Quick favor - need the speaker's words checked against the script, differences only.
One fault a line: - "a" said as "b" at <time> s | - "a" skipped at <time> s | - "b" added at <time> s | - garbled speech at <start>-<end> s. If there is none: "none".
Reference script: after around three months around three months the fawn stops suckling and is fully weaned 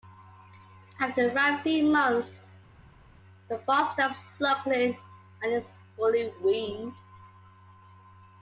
- "around three months" skipped at 2.3 s